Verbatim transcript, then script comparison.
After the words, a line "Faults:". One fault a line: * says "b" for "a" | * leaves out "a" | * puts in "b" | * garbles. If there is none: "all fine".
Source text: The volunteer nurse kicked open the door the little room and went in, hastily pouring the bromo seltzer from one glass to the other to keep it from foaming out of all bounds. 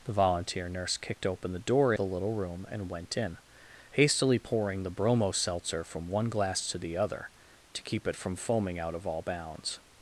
The volunteer nurse kicked open the door the little room and went in, hastily pouring the bromo seltzer from one glass to the other to keep it from foaming out of all bounds.
Faults:
all fine